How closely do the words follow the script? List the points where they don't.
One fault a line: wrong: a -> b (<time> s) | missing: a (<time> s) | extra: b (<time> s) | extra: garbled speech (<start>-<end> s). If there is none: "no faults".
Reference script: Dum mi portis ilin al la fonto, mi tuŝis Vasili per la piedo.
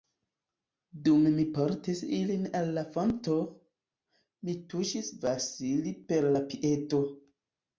no faults